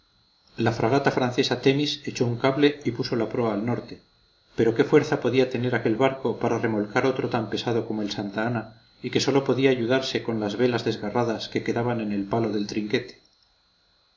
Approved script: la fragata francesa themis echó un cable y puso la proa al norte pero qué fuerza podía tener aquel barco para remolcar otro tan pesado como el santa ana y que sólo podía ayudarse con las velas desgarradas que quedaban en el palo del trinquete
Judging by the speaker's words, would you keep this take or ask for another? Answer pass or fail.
pass